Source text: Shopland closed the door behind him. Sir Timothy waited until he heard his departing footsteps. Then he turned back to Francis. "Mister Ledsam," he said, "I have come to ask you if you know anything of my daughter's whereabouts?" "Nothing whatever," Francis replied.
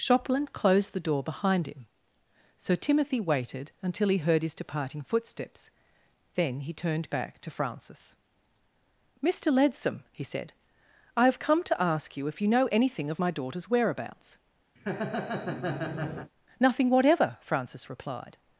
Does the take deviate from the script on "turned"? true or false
false